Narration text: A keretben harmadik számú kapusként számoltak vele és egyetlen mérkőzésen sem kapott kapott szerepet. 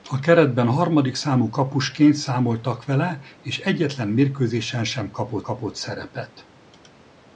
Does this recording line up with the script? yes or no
yes